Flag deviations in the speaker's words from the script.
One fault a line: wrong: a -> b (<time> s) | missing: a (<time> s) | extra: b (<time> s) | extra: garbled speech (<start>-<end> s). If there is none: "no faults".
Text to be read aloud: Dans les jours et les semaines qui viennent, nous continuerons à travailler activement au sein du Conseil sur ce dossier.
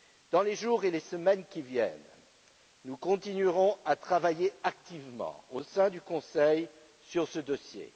no faults